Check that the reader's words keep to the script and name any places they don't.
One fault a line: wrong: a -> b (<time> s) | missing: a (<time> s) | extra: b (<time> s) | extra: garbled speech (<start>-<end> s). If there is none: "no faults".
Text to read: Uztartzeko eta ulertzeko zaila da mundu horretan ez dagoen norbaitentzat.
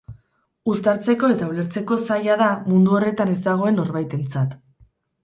no faults